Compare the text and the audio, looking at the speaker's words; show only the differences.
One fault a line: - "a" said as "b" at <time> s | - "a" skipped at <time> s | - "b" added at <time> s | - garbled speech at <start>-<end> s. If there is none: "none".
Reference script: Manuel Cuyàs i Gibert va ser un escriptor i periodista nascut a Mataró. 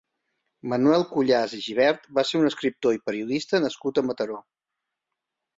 none